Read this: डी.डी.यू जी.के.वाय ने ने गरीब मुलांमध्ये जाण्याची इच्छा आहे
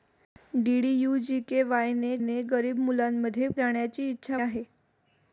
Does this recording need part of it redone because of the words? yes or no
no